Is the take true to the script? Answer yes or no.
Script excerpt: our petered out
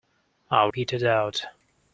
yes